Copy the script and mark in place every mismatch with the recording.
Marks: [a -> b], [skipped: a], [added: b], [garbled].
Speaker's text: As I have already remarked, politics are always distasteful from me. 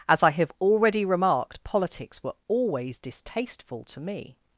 As I have already remarked, politics [are -> were] always distasteful [from -> to] me.